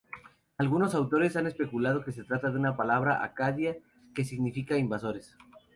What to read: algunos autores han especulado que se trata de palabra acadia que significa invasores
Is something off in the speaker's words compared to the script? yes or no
yes